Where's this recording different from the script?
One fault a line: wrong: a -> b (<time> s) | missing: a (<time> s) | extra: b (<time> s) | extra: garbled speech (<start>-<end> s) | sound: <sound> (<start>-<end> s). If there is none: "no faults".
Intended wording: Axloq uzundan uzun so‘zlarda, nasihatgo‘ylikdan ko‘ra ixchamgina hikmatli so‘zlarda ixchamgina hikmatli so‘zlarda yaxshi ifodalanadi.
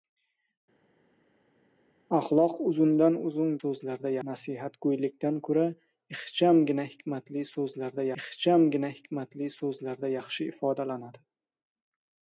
no faults